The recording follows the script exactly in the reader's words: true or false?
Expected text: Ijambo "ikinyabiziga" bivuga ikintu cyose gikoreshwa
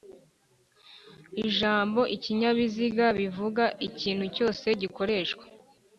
true